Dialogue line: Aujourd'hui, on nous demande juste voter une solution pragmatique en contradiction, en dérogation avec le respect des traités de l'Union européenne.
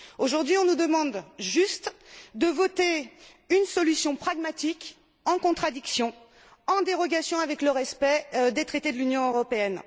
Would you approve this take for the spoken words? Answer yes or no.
no